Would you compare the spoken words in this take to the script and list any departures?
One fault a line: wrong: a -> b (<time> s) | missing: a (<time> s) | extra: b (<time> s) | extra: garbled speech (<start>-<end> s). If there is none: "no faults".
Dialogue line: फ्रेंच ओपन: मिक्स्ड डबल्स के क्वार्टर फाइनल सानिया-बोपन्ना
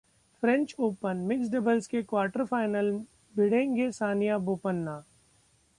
extra: भिड़ेंगे (3.4 s)